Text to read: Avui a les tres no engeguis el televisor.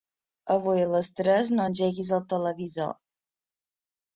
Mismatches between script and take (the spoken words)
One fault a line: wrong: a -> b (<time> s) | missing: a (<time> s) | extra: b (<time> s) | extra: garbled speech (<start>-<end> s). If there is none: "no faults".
no faults